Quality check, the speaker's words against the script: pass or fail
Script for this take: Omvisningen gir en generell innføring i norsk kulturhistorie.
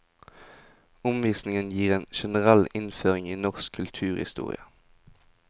pass